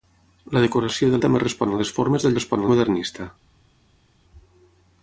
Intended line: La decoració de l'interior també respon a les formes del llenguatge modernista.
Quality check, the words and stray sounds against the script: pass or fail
fail